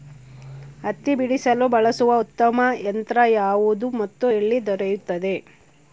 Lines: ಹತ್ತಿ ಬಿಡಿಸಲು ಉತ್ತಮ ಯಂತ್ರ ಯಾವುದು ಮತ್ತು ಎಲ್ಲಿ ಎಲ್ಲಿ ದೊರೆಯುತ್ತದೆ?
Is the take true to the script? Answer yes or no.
no